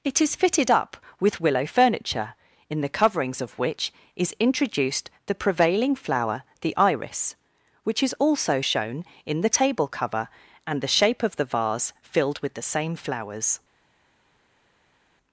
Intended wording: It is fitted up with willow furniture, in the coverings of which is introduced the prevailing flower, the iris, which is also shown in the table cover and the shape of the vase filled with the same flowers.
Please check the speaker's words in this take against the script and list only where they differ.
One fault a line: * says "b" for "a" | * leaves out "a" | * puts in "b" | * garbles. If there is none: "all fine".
all fine